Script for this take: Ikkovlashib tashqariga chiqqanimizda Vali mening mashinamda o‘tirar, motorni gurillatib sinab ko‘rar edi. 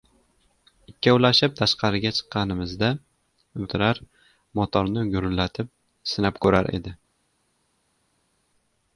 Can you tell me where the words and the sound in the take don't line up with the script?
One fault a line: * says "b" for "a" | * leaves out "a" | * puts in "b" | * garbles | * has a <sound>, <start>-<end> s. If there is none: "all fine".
* leaves out "Vali mening mashinamda"